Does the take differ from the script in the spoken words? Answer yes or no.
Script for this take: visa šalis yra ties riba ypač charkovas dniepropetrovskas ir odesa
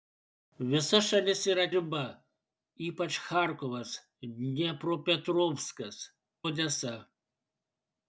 yes